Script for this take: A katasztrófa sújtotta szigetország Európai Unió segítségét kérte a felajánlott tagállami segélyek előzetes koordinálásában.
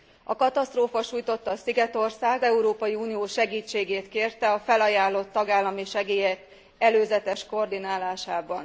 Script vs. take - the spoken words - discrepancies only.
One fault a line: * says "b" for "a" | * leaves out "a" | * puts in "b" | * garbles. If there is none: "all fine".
all fine